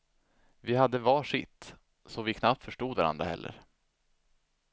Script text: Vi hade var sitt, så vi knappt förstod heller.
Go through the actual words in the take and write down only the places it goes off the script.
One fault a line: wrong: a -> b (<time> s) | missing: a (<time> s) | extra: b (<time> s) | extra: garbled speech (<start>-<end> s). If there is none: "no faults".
extra: varandra (2.9 s)